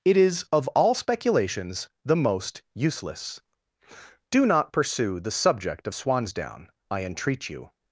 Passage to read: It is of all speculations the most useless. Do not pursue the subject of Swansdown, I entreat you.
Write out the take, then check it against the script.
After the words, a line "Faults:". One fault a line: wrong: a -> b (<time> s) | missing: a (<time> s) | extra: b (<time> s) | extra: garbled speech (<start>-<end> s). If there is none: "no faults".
It is of all speculations the most useless. Do not pursue the subject of Swansdown, I entreat you.
Faults:
no faults